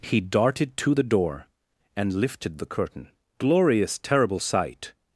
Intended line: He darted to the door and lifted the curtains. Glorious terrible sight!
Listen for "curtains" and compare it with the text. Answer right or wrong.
wrong